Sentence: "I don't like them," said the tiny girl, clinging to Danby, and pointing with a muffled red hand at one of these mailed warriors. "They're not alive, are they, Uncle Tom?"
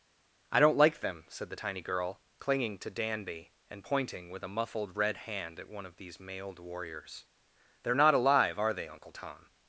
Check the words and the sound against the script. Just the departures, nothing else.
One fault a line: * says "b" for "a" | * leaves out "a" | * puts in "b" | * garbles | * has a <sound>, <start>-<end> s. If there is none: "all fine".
all fine